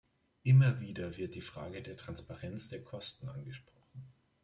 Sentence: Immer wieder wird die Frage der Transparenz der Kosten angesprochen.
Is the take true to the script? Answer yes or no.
yes